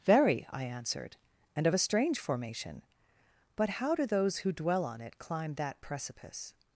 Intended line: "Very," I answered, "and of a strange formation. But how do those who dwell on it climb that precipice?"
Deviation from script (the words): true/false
false